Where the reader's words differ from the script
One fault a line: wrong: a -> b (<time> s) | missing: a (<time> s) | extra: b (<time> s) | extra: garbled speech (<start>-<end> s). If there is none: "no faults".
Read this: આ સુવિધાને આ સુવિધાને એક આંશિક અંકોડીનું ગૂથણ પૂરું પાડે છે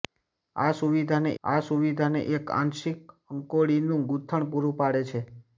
no faults